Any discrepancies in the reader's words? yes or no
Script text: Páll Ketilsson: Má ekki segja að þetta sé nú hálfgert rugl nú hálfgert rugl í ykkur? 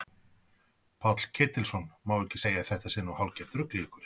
yes